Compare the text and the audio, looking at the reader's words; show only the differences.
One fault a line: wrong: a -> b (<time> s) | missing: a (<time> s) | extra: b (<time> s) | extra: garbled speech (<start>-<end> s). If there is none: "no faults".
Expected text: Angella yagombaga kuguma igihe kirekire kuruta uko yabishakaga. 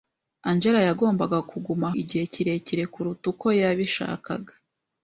no faults